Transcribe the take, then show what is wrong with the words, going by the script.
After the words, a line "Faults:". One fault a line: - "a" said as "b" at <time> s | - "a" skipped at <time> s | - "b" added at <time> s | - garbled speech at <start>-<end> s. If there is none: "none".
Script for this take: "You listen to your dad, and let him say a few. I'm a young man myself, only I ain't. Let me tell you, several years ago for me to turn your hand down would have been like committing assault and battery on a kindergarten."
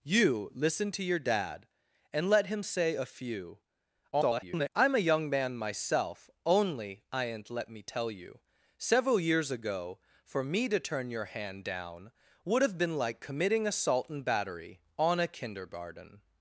"You listen to your dad, and let him say a few. [garbled] I'm a young man myself, only I ain't. Let me tell you, several years ago for me to turn your hand down would have been like committing assault and battery on a kindergarten."
Faults:
- garbled speech at 4.1-4.7 s